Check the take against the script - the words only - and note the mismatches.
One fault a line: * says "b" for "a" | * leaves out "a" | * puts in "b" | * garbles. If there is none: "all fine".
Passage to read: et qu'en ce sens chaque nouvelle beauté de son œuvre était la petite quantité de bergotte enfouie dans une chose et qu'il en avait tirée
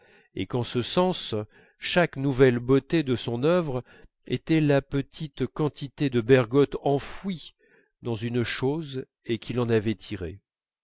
all fine